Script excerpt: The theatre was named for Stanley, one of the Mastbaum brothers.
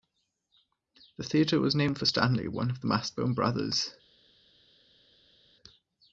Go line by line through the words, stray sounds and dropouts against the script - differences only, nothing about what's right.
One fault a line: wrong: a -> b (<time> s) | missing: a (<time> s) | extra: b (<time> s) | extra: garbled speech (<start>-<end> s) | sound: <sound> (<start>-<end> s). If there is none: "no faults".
no faults